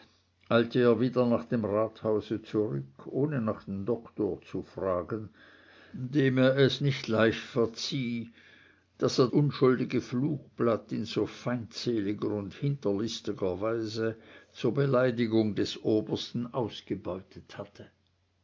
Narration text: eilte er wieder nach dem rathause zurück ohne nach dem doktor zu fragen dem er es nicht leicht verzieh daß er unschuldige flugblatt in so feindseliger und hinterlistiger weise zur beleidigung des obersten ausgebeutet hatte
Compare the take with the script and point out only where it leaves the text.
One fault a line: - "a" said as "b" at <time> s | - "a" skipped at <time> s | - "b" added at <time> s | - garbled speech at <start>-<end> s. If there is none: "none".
none